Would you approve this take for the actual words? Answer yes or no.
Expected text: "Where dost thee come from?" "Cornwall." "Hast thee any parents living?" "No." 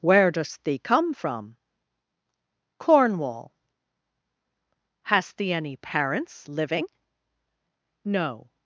yes